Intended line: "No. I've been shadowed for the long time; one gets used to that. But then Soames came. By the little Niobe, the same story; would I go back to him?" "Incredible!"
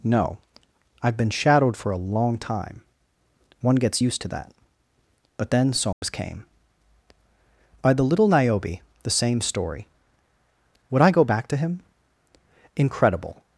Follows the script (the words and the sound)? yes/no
no